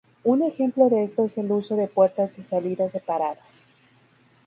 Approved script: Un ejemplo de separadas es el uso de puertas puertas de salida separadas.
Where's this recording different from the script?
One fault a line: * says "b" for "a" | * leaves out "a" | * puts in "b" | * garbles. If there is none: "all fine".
* says "esto" for "separadas"
* leaves out "puertas"